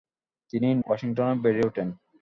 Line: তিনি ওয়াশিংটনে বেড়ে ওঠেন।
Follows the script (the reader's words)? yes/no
yes